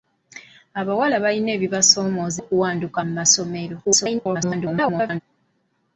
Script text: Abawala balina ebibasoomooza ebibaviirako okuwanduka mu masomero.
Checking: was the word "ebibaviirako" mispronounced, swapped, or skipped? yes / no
yes